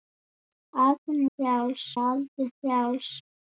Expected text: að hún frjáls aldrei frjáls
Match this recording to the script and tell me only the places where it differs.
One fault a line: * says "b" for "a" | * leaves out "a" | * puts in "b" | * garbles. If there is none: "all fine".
all fine